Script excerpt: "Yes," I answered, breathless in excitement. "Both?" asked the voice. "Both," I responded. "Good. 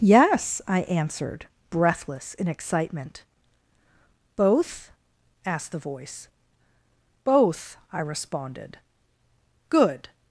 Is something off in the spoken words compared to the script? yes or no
no